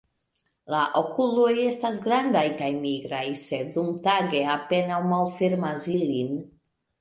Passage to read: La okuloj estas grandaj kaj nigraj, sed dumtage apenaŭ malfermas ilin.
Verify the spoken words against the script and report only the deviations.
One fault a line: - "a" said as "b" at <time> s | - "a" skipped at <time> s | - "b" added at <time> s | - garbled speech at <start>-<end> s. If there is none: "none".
none